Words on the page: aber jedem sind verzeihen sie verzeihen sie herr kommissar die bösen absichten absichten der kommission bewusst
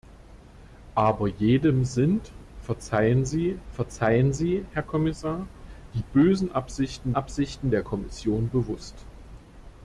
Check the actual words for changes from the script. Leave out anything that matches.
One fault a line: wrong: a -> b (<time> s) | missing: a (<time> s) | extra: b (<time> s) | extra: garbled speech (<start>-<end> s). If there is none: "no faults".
no faults